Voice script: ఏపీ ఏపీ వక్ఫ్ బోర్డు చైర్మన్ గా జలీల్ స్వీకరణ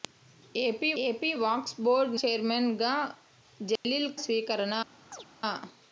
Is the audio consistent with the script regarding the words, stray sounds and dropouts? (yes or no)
no